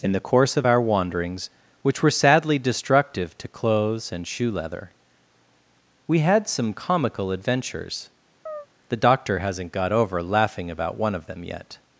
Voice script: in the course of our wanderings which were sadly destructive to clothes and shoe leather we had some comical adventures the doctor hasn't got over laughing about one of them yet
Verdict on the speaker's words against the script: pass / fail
pass